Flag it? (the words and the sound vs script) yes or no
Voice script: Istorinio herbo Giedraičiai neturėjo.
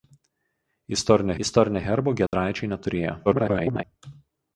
yes